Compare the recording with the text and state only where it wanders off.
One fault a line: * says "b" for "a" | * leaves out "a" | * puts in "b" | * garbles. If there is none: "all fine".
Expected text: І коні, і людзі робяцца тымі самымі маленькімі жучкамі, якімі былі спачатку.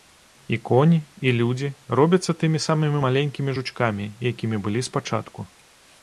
all fine